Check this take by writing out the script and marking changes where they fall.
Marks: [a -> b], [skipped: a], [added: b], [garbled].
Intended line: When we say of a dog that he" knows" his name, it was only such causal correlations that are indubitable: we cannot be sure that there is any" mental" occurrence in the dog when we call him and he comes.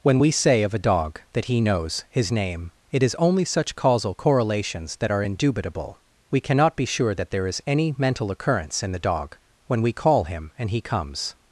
When we say of a dog that he" knows" his name, it [was -> is] only such causal correlations that are indubitable: we cannot be sure that there is any" mental" occurrence in the dog when we call him and he comes.